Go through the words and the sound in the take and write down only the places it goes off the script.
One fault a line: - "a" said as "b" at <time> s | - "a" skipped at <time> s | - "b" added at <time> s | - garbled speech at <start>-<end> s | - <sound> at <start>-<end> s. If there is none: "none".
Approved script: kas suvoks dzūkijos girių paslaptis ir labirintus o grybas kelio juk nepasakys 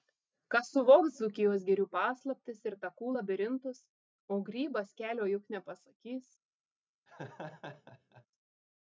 - "takų" added at 2.8 s
- laugh at 7.1-8.3 s